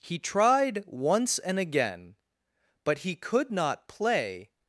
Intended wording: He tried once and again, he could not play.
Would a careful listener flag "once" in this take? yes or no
no